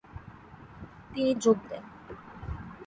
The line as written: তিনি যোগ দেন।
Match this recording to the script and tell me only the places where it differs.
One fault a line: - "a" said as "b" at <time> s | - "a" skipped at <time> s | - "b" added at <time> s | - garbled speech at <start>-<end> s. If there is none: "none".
none